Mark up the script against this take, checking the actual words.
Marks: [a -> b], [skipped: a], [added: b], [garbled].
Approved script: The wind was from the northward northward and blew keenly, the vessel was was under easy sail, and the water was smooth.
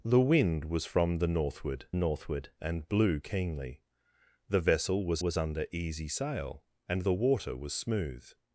The wind was from the northward northward and blew keenly, the vessel was was under easy sail, and the water was smooth.